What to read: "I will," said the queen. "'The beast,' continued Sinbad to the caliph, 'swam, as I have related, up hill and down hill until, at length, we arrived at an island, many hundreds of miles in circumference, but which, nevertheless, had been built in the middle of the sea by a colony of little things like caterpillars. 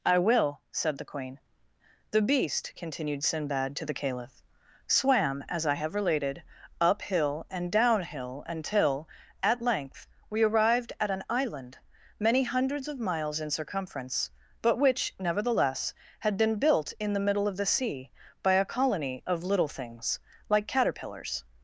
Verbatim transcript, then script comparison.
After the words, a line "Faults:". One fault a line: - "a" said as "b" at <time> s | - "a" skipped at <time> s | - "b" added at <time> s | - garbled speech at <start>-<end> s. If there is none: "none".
"I will," said the queen. "'The beast,' continued Sinbad to the caliph, 'swam, as I have related, up hill and down hill until, at length, we arrived at an island, many hundreds of miles in circumference, but which, nevertheless, had been built in the middle of the sea by a colony of little things like caterpillars.
Faults:
none